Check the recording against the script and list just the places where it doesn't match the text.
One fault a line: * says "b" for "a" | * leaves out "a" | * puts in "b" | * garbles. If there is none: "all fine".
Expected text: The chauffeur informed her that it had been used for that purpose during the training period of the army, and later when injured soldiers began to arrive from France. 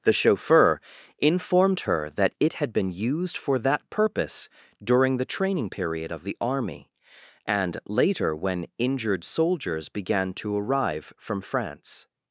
all fine